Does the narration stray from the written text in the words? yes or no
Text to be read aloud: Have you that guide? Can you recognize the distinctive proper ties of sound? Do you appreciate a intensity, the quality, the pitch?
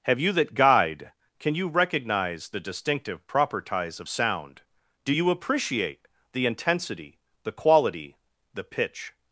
yes